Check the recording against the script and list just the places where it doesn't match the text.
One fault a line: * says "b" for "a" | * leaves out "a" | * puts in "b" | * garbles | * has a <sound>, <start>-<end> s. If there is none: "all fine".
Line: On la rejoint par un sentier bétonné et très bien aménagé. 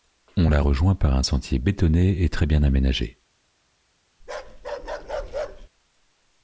* has a bark, 4.2-5.7 s